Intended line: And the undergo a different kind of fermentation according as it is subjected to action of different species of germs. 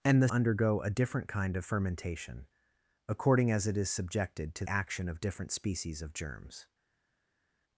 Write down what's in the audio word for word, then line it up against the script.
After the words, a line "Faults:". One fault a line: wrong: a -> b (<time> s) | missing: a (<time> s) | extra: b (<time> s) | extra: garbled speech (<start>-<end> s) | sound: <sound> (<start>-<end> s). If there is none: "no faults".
And the undergo a different kind of fermentation according as it is subjected to action of different species of germs.
Faults:
no faults